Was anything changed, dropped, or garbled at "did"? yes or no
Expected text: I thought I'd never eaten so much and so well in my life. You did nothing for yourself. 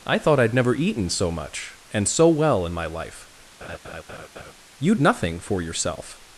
yes